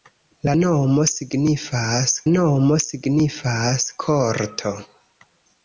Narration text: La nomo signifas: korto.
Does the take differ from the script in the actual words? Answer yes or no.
yes